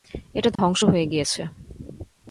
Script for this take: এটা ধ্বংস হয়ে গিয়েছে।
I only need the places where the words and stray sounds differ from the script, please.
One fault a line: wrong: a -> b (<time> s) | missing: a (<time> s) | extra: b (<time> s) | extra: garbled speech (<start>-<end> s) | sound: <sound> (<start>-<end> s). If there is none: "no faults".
sound: dropout (0.6-0.6 s)